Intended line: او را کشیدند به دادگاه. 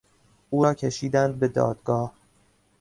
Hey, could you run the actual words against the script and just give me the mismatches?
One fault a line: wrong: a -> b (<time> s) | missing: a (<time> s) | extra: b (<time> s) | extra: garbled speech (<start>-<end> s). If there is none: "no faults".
no faults